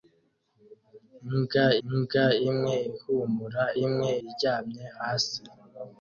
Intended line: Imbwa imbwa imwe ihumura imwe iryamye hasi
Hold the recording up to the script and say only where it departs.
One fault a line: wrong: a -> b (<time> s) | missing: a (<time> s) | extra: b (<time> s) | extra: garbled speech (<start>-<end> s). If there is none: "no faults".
no faults